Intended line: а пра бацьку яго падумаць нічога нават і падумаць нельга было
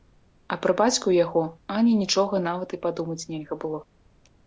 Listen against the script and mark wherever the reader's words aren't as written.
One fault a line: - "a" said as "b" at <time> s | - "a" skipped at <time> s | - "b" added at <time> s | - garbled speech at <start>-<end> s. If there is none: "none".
- "падумаць" said as "ані" at 1.8 s